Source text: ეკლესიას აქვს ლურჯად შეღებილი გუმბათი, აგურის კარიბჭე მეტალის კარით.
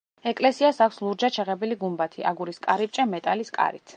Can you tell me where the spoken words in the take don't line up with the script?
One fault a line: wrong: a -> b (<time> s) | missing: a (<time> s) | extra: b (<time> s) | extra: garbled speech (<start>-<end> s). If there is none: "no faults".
no faults